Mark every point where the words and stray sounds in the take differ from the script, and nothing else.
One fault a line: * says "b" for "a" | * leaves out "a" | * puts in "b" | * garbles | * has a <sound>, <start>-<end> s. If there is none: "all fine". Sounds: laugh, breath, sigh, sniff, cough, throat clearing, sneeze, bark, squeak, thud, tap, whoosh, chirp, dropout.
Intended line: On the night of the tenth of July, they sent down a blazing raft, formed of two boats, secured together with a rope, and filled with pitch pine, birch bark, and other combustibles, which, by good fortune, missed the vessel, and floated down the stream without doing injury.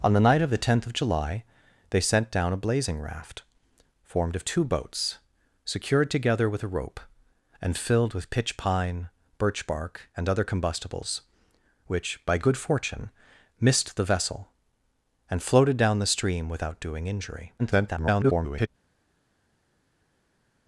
* garbles